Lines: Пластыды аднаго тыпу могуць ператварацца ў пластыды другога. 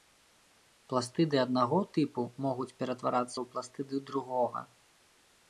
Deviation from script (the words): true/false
false